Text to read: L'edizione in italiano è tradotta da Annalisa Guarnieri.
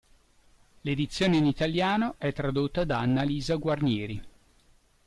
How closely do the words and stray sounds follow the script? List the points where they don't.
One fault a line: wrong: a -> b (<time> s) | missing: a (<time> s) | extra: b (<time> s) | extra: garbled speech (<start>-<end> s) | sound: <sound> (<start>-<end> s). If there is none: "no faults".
no faults